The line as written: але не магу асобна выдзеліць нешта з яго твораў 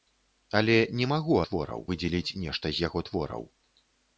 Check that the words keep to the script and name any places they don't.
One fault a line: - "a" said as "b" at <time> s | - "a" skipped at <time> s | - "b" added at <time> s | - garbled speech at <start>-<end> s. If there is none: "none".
- "асобна" said as "твораў" at 1.5 s